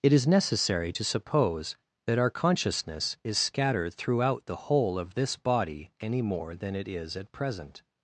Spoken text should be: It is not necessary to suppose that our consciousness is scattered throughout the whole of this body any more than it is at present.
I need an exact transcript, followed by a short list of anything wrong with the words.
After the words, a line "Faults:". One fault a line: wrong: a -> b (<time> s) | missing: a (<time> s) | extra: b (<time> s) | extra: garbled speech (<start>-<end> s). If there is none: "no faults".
It is necessary to suppose that our consciousness is scattered throughout the whole of this body any more than it is at present.
Faults:
missing: not (0.2 s)